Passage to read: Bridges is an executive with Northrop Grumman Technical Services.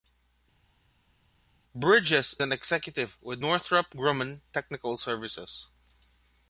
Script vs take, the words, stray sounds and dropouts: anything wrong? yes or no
yes